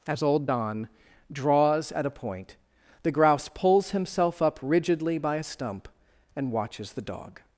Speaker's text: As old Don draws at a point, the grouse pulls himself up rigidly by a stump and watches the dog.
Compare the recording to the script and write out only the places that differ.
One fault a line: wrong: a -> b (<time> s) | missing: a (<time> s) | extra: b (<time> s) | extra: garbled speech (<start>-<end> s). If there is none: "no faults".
no faults